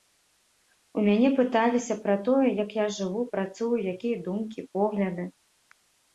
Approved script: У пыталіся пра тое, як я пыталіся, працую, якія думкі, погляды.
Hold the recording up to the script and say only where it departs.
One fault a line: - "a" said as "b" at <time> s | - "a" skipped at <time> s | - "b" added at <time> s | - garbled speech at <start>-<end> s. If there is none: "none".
- "мяне" added at 1.1 s
- "пыталіся" said as "жыву" at 3.0 s